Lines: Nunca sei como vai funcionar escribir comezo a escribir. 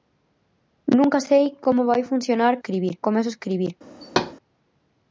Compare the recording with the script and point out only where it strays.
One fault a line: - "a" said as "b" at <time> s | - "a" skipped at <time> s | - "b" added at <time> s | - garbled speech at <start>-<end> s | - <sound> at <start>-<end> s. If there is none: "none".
- thud at 4.0-4.3 s